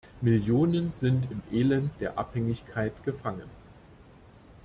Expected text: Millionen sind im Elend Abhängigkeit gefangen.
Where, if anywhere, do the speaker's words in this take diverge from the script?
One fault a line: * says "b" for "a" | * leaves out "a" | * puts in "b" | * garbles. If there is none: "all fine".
* puts in "der"